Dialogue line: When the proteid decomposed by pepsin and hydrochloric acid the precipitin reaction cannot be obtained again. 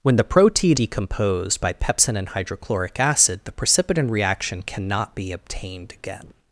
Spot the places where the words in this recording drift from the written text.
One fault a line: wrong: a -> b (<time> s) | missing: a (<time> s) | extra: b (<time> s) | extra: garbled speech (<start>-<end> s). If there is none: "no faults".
no faults